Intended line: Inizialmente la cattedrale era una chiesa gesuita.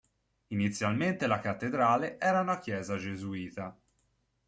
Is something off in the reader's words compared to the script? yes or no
no